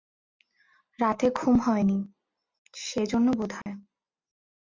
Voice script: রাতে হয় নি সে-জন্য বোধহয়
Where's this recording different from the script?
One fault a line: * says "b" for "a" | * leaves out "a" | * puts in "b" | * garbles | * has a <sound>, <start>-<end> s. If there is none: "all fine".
* puts in "ঘুম"
* has a dropout, 3.6-3.7 s